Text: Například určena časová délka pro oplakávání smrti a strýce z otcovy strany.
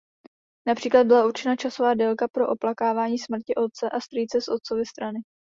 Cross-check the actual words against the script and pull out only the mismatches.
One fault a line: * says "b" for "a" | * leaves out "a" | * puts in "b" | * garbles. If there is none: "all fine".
* puts in "byla"
* puts in "otce"